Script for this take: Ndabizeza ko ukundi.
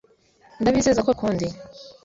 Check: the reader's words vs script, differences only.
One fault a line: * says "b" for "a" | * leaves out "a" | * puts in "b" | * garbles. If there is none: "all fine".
all fine